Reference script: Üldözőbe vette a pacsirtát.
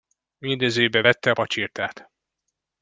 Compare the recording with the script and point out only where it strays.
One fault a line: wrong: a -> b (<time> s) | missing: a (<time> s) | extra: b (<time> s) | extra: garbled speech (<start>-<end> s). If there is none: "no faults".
no faults